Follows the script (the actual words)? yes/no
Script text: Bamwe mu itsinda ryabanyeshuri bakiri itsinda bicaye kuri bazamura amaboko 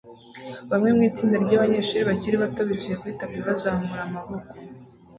no